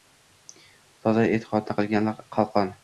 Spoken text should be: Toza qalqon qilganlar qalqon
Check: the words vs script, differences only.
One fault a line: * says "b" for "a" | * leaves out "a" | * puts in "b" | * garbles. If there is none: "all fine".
* says "e'tiqodni" for "qalqon"